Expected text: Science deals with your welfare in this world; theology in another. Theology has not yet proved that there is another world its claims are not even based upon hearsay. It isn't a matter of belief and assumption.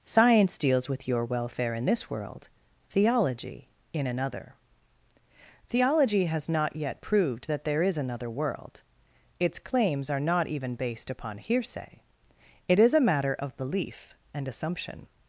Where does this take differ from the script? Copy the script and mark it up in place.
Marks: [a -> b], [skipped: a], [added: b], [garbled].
Science deals with your welfare in this world; theology in another. Theology has not yet proved that there is another world its claims are not even based upon hearsay. It [isn't -> is] a matter of belief and assumption.